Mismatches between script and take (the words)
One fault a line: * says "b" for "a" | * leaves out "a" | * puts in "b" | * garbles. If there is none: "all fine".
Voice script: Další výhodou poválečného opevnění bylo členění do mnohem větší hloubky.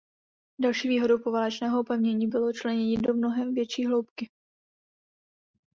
all fine